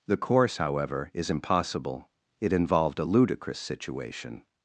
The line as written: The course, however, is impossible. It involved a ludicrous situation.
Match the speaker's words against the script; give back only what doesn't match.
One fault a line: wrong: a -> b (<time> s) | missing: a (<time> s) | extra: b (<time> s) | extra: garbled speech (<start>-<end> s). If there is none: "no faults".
no faults